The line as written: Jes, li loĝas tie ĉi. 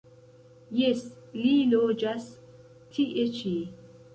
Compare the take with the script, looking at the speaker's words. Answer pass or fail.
pass